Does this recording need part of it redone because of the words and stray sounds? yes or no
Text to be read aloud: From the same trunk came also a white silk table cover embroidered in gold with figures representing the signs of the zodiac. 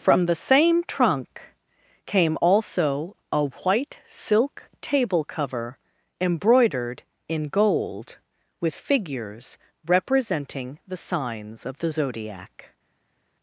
no